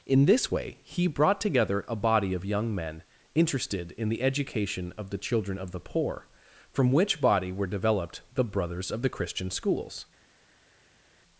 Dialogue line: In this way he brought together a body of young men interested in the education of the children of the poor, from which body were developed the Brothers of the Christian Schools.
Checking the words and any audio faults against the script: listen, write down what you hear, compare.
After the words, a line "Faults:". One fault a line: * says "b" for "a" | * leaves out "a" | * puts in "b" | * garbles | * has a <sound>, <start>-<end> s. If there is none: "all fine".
In this way he brought together a body of young men interested in the education of the children of the poor, from which body were developed the Brothers of the Christian Schools.
Faults:
all fine